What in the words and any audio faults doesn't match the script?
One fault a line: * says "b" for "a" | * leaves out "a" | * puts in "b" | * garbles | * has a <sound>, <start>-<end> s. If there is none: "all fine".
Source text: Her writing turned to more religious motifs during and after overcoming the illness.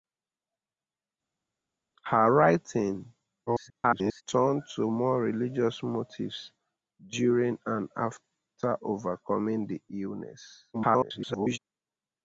* garbles
* garbles